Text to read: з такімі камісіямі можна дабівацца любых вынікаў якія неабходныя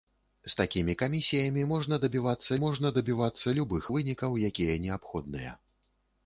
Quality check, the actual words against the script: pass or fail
fail